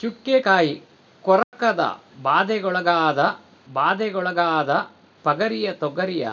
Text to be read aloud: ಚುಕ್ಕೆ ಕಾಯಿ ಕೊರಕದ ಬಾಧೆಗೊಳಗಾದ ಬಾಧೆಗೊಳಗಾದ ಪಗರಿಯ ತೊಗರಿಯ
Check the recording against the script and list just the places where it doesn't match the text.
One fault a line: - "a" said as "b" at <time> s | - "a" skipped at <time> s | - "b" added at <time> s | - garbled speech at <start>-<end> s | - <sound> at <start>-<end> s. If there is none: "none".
- dropout at 1.4-1.5 s